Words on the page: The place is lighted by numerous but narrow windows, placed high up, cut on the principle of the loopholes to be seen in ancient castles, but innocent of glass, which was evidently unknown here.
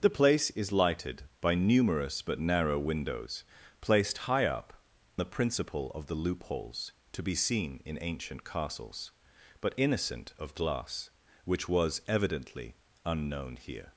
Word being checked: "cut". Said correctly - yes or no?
no